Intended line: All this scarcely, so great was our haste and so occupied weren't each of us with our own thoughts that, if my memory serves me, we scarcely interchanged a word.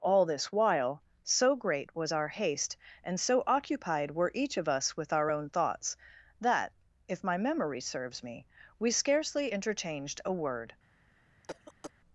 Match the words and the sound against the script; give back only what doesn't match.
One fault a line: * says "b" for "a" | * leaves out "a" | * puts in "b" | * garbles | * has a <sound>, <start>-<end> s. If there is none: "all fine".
* says "while" for "scarcely"
* says "were" for "weren't"
* has a cough, 11.4-11.9 s